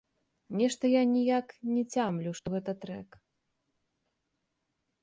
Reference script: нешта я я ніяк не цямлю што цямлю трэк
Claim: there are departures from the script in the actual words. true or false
true